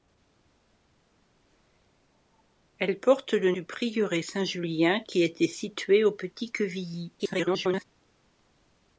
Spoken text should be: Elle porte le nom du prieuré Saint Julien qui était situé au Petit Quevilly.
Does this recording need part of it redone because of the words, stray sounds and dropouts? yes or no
yes